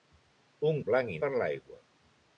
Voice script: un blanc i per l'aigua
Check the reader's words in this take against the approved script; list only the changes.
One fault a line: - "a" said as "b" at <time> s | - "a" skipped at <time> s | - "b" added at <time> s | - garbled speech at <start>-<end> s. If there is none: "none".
none